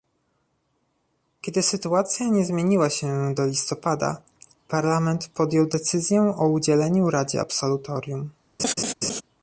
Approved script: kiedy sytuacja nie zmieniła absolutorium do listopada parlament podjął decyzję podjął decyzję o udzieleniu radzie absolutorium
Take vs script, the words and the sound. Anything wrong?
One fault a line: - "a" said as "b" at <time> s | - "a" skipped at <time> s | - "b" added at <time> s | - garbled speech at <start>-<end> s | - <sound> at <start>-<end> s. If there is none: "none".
- "absolutorium" said as "się" at 2.9 s
- "podjął decyzję" skipped at 6.3 s
- laugh at 8.6-9.2 s